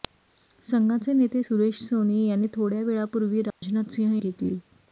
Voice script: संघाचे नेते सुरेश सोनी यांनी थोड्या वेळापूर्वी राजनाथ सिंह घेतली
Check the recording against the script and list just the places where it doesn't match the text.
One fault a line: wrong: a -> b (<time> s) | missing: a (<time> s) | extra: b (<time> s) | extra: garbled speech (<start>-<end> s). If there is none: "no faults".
no faults